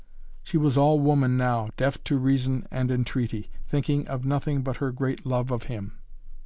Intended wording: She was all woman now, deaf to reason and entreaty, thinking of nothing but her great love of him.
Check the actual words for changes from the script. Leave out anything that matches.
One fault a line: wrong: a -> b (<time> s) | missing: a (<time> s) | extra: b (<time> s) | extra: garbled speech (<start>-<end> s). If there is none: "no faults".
no faults